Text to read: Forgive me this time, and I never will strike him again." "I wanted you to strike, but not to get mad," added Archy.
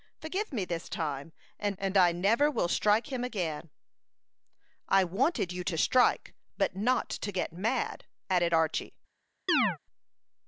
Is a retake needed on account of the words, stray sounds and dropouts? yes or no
yes